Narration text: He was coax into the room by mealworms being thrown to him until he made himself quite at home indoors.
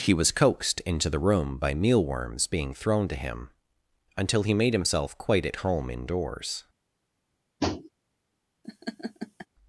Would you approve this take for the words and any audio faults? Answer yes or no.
no